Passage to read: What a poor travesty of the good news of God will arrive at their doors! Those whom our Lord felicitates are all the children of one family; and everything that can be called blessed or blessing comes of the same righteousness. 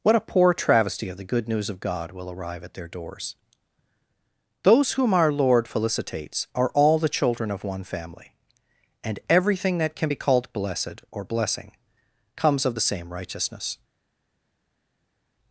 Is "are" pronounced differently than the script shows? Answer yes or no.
no